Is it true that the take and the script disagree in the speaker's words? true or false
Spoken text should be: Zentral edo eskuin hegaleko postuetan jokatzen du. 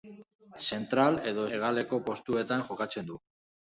true